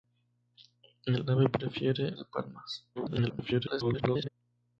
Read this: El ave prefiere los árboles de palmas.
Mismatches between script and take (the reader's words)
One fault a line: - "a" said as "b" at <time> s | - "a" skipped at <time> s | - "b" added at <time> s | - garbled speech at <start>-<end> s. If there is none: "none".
- "los árboles" skipped at 2.1 s
- garbled speech at 3.0-4.3 s